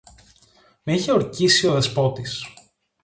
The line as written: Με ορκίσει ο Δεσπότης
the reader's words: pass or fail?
fail